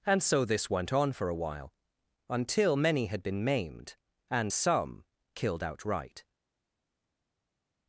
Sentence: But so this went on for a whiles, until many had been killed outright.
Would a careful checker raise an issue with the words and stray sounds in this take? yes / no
yes